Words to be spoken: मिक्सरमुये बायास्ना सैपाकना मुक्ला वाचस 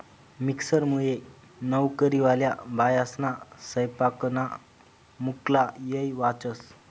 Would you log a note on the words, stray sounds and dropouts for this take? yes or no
yes